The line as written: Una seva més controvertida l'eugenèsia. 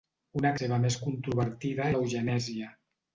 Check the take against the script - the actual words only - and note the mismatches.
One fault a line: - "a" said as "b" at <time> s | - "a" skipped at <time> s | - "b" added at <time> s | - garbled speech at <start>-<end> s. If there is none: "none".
none